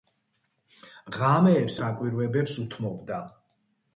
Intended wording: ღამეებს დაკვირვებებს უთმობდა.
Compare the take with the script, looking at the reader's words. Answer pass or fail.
pass